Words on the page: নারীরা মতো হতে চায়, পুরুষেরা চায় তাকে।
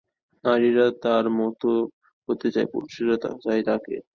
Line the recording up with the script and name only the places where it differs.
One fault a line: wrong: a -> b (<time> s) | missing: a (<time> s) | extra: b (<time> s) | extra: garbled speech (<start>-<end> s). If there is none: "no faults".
extra: তার (1.0 s)